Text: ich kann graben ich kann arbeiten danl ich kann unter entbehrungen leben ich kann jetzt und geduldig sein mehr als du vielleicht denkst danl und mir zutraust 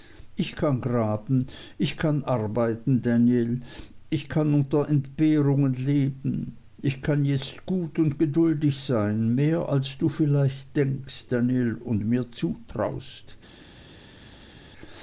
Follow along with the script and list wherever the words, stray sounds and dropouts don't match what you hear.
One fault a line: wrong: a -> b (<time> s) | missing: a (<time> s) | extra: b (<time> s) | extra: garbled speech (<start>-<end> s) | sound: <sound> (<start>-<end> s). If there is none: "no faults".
extra: gut (7.7 s)